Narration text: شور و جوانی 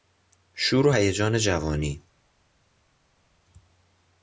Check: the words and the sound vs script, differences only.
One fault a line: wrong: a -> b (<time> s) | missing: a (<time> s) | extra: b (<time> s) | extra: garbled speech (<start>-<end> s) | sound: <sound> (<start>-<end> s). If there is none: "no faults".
extra: هیجان (0.9 s)